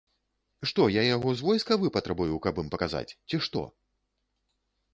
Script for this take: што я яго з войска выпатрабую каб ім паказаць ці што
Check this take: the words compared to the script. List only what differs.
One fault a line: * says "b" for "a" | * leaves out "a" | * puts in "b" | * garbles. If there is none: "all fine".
all fine